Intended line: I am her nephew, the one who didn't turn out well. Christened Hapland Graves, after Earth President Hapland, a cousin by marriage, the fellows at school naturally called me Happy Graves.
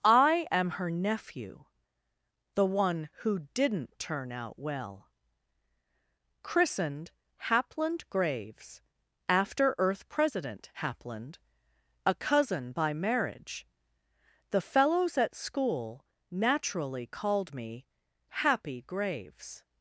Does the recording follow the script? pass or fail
pass